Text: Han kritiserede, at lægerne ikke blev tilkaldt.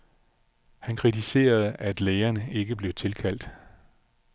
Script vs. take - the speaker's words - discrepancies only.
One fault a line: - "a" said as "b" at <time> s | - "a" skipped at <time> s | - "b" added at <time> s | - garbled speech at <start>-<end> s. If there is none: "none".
none